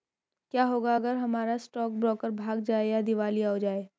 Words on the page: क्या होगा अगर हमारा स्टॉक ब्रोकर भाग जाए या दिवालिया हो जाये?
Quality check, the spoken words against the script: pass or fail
pass